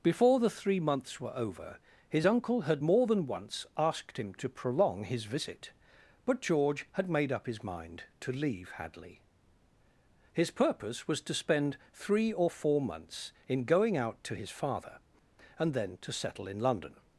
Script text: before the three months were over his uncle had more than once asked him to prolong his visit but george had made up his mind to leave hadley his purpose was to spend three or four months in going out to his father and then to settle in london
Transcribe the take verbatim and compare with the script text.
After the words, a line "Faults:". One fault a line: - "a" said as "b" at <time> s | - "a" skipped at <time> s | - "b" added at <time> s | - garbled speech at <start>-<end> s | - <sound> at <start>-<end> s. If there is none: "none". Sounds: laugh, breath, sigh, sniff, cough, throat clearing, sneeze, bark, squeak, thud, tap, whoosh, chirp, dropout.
before the three months were over his uncle had more than once asked him to prolong his visit but george had made up his mind to leave hadley his purpose was to spend three or four months in going out to his father and then to settle in london
Faults:
none